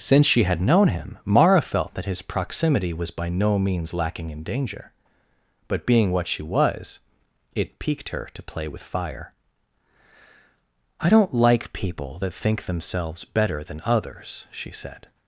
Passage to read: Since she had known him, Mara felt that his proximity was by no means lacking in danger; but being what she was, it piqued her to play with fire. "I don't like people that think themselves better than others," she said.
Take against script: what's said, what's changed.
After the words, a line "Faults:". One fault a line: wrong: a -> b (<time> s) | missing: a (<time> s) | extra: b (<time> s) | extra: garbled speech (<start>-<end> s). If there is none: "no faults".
Since she had known him, Mara felt that his proximity was by no means lacking in danger; but being what she was, it piqued her to play with fire. "I don't like people that think themselves better than others," she said.
Faults:
no faults